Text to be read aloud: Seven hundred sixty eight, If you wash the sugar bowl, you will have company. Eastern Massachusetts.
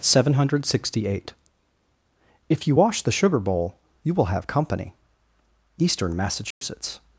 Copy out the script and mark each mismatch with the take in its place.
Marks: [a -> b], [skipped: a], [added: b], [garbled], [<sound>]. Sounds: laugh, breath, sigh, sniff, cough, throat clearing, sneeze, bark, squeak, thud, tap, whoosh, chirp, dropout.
Seven hundred sixty eight, If you wash the sugar bowl, you will have company. Eastern Massachusetts. [dropout]